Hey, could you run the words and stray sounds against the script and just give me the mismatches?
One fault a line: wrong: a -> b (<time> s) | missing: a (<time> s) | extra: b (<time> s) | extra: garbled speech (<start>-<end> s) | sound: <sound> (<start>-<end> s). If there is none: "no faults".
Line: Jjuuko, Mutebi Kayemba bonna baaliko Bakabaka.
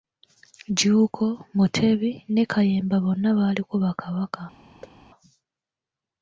extra: ne (2.3 s)
sound: thud (4.8-5.0 s)